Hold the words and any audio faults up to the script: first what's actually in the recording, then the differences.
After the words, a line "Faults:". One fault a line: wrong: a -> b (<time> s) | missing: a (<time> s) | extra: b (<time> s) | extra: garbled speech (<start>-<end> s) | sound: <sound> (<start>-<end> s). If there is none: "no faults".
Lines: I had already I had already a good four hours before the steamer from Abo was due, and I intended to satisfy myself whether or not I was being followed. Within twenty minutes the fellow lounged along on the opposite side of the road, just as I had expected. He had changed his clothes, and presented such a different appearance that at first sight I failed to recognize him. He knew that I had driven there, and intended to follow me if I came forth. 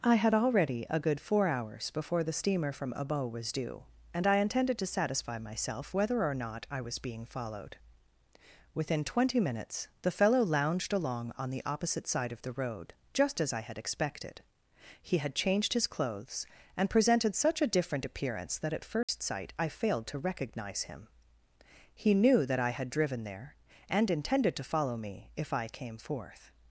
I had already a good four hours before the steamer from Abo was due, and I intended to satisfy myself whether or not I was being followed. Within twenty minutes the fellow lounged along on the opposite side of the road, just as I had expected. He had changed his clothes, and presented such a different appearance that at first sight I failed to recognize him. He knew that I had driven there, and intended to follow me if I came forth.
Faults:
missing: I had already (0.9 s)
sound: dropout (19.0-19.1 s)